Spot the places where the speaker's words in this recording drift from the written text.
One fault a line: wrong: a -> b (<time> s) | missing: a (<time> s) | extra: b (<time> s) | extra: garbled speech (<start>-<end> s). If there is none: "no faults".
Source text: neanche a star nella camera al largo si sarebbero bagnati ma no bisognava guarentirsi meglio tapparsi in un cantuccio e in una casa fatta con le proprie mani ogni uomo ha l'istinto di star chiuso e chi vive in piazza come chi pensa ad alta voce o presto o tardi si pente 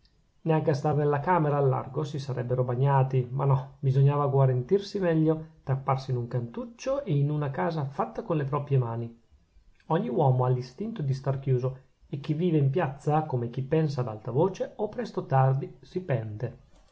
no faults